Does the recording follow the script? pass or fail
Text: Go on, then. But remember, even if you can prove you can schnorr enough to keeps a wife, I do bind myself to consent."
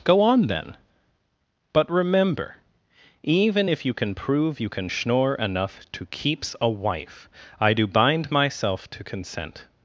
pass